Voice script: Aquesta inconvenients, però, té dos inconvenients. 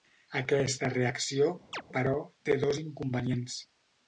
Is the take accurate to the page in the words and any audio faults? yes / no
no